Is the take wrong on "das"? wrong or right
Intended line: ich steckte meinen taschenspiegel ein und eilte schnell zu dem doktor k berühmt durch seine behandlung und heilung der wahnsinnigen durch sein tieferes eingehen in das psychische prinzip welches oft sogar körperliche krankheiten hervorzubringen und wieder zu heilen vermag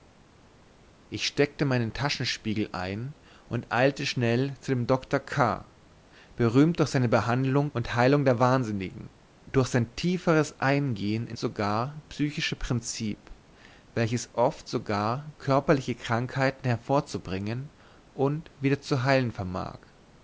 wrong